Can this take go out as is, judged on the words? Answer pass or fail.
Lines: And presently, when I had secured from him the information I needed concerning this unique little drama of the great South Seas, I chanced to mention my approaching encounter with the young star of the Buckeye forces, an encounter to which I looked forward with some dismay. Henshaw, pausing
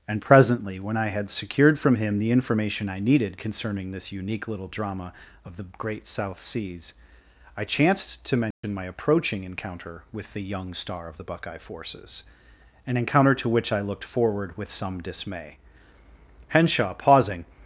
pass